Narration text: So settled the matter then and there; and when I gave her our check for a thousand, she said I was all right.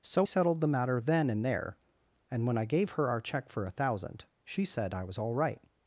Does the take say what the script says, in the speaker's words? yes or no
yes